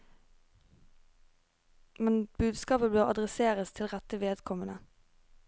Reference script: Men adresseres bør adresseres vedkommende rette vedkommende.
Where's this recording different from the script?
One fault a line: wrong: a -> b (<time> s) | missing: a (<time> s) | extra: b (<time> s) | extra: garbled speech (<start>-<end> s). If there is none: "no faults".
wrong: adresseres -> budskapet (2.4 s)
wrong: vedkommende -> til (3.7 s)